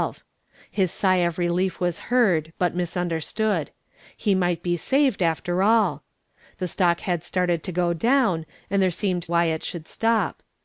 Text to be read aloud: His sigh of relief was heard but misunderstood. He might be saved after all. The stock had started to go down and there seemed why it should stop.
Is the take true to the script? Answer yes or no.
yes